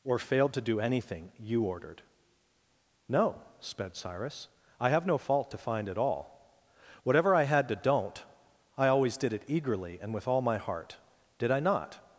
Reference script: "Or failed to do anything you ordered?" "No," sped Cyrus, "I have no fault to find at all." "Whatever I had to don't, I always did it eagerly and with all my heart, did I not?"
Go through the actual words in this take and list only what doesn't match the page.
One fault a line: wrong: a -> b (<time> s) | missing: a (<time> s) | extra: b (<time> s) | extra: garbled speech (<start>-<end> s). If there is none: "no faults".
no faults